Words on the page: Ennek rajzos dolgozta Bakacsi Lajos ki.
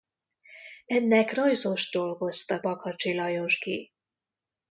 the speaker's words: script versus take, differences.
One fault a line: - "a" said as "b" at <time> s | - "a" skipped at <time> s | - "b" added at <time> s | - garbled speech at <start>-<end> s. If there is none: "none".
none